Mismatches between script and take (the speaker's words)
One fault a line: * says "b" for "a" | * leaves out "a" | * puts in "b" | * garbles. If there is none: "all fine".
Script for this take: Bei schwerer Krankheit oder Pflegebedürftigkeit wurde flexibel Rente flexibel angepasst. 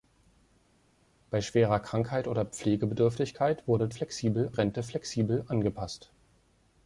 all fine